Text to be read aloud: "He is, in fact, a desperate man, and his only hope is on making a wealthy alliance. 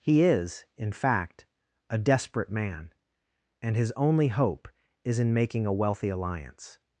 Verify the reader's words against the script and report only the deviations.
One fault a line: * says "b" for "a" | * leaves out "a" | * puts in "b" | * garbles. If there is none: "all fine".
* says "in" for "on"